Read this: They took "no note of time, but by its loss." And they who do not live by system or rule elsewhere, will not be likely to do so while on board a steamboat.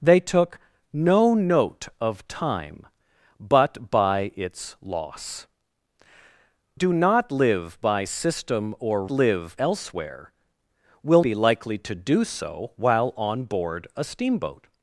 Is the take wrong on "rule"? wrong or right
wrong